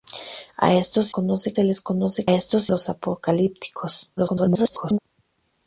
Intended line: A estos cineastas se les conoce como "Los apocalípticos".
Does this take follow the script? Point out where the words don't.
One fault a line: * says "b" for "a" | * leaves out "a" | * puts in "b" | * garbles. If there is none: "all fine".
* says "conoce" for "cineastas"
* says "estos" for "como"
* garbles